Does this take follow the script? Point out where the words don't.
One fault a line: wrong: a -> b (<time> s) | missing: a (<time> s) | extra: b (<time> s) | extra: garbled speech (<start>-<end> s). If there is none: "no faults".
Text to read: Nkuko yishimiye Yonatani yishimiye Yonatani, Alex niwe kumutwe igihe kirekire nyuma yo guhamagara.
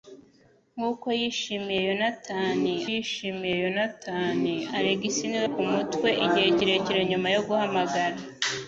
no faults